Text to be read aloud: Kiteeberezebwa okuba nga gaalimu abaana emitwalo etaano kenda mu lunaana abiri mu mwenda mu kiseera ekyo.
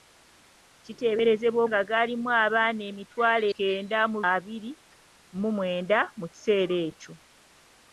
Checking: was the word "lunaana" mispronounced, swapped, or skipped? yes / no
yes